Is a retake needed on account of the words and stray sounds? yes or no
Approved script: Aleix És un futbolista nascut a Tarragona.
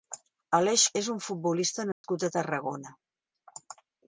yes